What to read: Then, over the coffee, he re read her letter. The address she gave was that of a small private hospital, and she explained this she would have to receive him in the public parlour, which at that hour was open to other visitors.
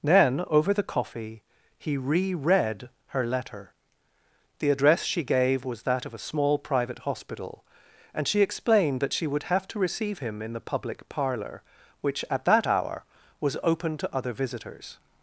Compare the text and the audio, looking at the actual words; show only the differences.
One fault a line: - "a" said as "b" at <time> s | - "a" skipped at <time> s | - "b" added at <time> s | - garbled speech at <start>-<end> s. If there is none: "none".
- "this" said as "that" at 9.0 s